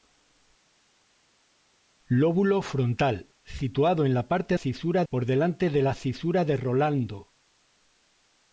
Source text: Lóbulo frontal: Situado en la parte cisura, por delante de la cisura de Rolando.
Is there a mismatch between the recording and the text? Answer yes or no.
no